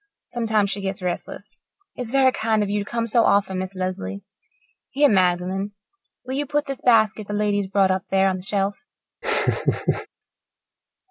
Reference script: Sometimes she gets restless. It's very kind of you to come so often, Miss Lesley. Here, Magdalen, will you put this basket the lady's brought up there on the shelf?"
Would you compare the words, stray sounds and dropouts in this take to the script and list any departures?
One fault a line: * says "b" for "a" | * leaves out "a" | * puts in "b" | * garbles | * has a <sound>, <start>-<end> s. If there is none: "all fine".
* has a laugh, 9.2-10.1 s